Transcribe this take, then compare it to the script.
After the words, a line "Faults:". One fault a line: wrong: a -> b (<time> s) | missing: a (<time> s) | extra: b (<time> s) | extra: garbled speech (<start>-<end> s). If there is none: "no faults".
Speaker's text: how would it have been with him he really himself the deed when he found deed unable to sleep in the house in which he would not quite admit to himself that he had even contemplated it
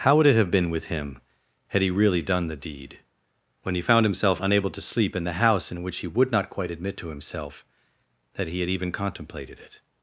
how would it have been with him had he really done the deed when he found himself unable to sleep in the house in which he would not quite admit to himself that he had even contemplated it
Faults:
extra: had (1.7 s)
wrong: himself -> done (2.2 s)
wrong: deed -> himself (4.0 s)